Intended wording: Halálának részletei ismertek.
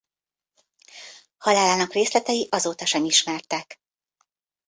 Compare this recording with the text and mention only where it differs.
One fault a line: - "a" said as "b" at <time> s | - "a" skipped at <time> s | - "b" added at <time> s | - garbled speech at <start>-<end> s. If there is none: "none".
- "azóta sem" added at 2.5 s